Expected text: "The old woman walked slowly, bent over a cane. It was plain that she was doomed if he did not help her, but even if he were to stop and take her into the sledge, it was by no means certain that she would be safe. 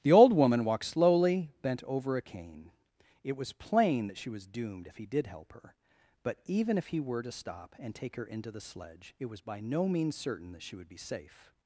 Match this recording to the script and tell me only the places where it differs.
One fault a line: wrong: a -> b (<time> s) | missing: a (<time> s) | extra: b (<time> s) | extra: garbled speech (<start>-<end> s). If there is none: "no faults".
missing: not (5.3 s)